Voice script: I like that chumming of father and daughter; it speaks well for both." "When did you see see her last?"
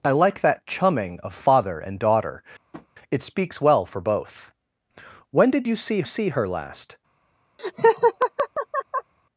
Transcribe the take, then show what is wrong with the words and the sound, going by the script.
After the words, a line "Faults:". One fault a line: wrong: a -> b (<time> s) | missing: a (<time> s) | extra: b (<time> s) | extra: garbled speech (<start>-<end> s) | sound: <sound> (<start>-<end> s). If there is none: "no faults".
I like that chumming of father and daughter; it speaks well for both." "When did you see see her last?"
Faults:
sound: tap (2.7-2.9 s)
sound: laugh (7.6-9.1 s)